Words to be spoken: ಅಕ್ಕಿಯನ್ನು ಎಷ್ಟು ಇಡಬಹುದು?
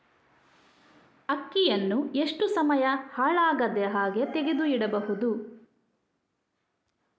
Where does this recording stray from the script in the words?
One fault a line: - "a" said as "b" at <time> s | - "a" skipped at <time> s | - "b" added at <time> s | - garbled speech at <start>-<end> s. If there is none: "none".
- "ಸಮಯ ಹಾಳಾಗದಹಾಗೆ ತೆಗೆದು" added at 2.5 s